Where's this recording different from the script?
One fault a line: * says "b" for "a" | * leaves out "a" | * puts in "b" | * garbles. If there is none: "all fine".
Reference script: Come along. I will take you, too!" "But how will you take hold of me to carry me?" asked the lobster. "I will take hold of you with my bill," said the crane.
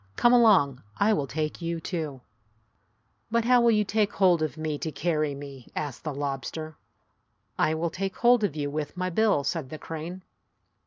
all fine